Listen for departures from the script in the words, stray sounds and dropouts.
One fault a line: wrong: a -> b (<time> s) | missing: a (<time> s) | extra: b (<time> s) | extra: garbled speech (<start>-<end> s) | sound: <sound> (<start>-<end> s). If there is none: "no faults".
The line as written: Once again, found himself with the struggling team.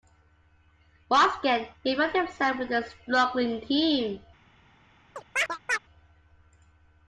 extra: he (1.8 s)
wrong: the -> a (2.7 s)
sound: chirp (5.2-5.8 s)